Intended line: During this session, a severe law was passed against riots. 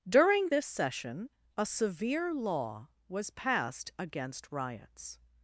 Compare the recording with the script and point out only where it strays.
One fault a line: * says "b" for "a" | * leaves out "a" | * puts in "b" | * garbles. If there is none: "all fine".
all fine